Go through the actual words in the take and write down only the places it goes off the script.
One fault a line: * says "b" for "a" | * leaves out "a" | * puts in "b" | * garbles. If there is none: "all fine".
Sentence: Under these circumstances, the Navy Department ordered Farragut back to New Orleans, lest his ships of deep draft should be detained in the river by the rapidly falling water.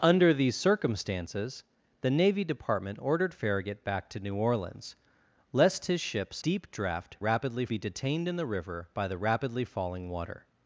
* leaves out "of"
* says "rapidly" for "should"